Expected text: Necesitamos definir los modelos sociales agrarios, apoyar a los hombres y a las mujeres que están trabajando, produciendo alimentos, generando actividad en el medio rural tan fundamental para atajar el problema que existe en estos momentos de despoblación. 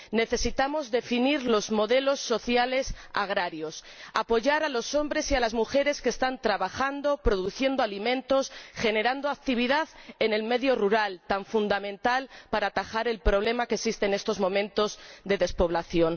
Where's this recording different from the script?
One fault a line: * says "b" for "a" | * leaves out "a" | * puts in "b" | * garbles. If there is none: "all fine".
all fine